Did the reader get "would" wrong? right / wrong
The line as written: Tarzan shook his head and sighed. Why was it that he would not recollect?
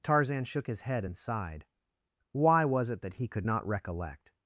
wrong